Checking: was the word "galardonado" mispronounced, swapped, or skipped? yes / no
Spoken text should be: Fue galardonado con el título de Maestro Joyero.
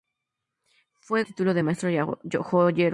yes